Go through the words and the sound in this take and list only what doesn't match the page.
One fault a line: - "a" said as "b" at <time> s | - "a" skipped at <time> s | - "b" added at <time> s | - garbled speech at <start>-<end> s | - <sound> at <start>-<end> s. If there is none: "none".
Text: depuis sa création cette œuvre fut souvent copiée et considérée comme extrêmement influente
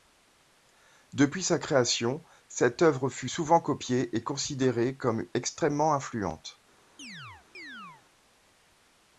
- chirp at 7.0-8.0 s